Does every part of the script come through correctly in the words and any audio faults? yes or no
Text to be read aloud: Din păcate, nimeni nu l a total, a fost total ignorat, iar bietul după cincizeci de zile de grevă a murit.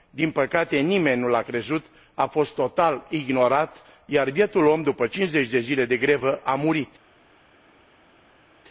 no